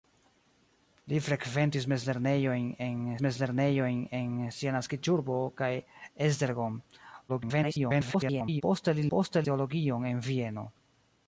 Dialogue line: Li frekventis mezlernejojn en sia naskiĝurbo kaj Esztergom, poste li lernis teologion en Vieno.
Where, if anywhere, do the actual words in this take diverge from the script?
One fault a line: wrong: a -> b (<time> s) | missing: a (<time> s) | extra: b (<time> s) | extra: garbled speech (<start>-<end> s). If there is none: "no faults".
extra: mezlernejojn en (3.2 s)
extra: garbled speech (7.3-8.6 s)
wrong: lernis -> poste (9.2 s)